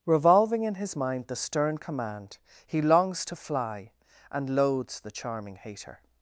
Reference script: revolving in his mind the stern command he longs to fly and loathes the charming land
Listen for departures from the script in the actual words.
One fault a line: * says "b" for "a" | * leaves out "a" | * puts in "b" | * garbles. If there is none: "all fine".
* says "hater" for "land"